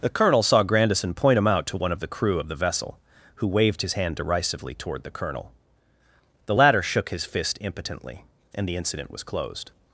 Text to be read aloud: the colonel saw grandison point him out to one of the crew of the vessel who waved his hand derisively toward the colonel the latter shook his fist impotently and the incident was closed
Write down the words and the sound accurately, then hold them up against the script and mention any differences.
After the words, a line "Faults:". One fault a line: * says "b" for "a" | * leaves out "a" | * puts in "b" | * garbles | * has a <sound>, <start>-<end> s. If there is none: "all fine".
the colonel saw grandison point him out to one of the crew of the vessel who waved his hand derisively toward the colonel the latter shook his fist impotently and the incident was closed
Faults:
all fine